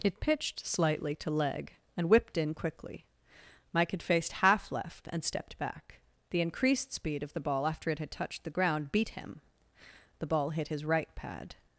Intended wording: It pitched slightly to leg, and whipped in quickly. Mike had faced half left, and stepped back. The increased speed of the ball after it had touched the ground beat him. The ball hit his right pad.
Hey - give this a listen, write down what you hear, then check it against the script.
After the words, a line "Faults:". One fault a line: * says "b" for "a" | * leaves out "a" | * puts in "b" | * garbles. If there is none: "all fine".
It pitched slightly to leg, and whipped in quickly. Mike had faced half left, and stepped back. The increased speed of the ball after it had touched the ground beat him. The ball hit his right pad.
Faults:
all fine